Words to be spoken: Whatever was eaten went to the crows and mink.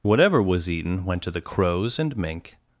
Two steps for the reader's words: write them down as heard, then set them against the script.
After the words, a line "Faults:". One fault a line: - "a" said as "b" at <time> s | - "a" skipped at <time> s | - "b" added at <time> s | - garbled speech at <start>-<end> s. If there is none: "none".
Whatever was eaten went to the crows and mink.
Faults:
none